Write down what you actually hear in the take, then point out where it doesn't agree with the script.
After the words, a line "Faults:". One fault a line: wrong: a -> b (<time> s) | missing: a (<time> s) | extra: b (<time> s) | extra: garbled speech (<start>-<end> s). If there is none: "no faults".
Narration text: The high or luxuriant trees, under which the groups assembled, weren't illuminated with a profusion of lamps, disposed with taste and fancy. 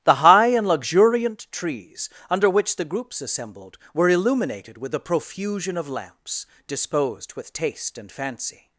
The high and luxuriant trees, under which the groups assembled, were illuminated with a profusion of lamps, disposed with taste and fancy.
Faults:
wrong: or -> and (0.5 s)
wrong: weren't -> were (3.9 s)